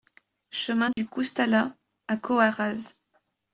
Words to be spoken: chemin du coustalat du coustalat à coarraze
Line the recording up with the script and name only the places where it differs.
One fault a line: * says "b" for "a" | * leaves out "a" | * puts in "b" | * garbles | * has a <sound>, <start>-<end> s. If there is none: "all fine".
* has a dropout, 0.9-1.0 s
* leaves out "du coustalat"